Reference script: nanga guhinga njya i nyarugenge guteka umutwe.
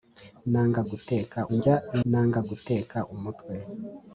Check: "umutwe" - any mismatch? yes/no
no